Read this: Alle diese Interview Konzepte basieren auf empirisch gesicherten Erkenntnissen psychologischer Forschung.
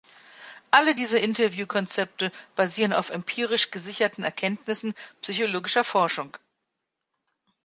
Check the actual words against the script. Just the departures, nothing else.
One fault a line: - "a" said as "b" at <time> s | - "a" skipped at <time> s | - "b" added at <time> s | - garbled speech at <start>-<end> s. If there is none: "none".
none